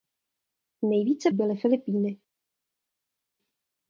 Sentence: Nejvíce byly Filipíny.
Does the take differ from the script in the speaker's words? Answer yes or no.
no